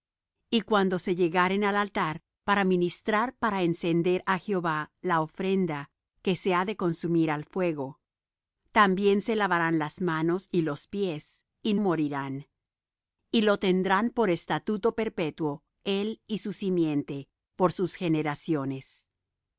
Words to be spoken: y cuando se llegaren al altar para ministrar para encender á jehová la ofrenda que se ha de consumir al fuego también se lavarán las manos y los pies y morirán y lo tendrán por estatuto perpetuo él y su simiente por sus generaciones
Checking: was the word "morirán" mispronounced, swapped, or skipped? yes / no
no